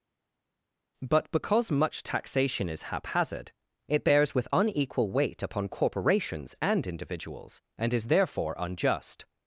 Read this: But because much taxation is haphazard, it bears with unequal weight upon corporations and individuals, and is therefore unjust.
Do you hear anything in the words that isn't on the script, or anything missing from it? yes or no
no